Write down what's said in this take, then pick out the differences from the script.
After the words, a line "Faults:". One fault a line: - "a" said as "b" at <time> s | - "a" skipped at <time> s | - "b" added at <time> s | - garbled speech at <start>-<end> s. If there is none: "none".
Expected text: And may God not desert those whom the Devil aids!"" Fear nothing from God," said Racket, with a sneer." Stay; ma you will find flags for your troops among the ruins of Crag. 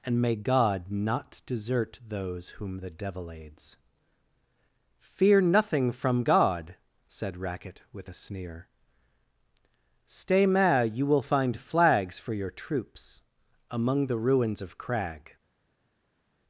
And may God not desert those whom the Devil aids!"" Fear nothing from God," said Racket, with a sneer." Stay; ma you will find flags for your troops among the ruins of Crag.
Faults:
none